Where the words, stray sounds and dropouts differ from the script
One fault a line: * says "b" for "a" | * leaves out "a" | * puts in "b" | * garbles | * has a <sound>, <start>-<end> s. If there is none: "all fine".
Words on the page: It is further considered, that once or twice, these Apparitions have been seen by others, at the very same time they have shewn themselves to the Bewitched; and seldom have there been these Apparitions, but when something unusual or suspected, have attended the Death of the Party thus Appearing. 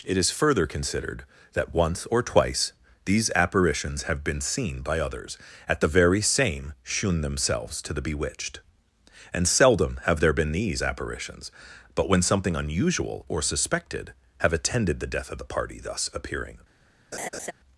* leaves out "time they have"
* has a laugh, 17.1-17.5 s